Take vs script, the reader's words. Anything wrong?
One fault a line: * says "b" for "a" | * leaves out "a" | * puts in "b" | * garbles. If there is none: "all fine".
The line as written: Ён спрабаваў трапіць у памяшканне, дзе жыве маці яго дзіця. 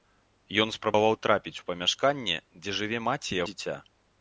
* leaves out "яго"